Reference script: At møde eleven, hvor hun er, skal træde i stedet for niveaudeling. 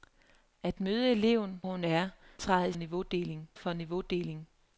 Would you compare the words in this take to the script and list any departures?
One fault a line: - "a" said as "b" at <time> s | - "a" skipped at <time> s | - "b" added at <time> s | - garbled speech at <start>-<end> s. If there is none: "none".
- "hvor" skipped at 1.6 s
- "skal" skipped at 2.1 s
- "stedet" said as "niveaudeling" at 2.7 s